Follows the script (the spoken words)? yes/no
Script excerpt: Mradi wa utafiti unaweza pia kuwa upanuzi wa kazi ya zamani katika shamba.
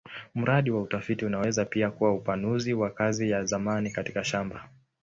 yes